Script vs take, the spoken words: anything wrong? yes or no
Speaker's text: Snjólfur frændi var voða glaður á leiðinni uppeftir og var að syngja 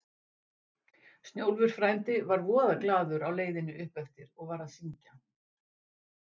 no